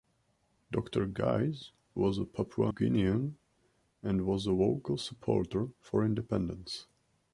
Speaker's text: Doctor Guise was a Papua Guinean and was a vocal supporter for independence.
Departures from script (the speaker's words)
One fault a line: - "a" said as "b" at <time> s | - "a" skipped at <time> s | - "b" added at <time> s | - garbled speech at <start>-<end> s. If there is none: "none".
none